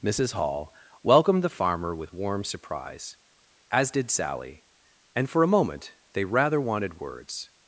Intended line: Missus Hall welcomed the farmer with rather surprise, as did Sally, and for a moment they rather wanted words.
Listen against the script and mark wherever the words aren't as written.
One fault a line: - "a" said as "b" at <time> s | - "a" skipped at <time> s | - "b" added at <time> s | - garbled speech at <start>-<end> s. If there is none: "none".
- "rather" said as "warm" at 2.1 s